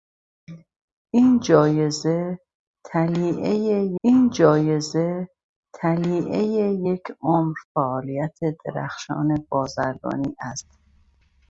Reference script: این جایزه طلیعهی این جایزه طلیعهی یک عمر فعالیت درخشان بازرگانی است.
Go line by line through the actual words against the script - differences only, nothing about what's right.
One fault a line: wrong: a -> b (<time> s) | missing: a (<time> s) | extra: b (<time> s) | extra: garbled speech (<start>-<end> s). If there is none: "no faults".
no faults